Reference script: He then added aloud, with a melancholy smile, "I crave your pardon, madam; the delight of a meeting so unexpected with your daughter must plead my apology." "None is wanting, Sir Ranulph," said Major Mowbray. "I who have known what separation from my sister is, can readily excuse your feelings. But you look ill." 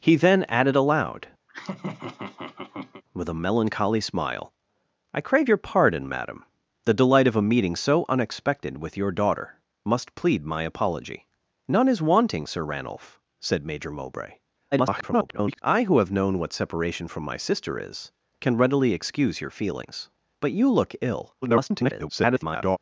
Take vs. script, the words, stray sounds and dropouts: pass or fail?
fail